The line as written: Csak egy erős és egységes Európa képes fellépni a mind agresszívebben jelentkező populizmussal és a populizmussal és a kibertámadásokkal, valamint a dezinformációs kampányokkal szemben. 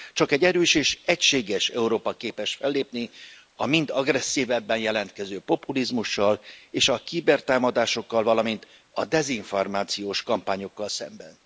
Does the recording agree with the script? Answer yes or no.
no